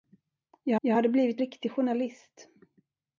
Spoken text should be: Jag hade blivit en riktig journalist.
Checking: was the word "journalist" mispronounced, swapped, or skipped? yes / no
no